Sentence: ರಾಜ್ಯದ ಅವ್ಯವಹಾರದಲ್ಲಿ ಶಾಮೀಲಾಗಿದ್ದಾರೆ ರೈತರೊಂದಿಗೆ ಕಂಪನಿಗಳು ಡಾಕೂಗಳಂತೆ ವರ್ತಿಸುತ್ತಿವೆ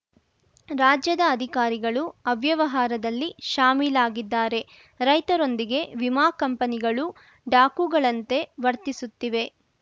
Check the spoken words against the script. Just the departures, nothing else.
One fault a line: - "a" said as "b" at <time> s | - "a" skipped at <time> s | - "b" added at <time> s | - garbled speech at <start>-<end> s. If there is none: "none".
- "ಅಧಿಕಾರಿಗಳು" added at 1.3 s
- "ವಿಮಾ" added at 6.0 s